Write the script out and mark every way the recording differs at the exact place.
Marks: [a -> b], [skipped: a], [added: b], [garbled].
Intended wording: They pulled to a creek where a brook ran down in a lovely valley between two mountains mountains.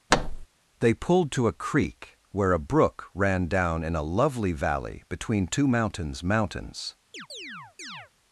They pulled to a creek where a brook ran down in a lovely valley between two mountains mountains.